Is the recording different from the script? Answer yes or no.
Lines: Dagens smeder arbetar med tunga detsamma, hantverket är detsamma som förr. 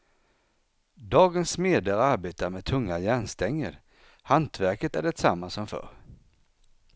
yes